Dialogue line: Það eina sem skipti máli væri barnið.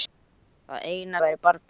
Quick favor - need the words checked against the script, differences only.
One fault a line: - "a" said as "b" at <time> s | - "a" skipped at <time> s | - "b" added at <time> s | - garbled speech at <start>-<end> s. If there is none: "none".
- "sem skipti máli" skipped at 1.2 s